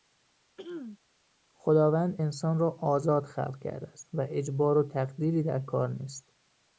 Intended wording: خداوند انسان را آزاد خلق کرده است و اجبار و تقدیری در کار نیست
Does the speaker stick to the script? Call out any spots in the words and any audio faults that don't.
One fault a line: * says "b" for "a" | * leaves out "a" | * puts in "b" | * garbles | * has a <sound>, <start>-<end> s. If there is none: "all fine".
* has a throat clearing, 0.6-1.0 s